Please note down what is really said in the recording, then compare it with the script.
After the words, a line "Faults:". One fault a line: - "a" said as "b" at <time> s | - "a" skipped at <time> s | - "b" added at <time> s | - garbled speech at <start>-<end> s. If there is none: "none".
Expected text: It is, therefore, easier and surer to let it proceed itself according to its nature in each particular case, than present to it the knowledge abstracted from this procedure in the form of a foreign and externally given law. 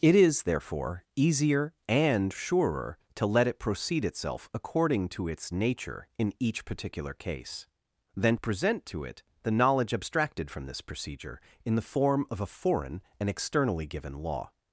It is, therefore, easier and surer to let it proceed itself according to its nature in each particular case, than present to it the knowledge abstracted from this procedure in the form of a foreign and externally given law.
Faults:
none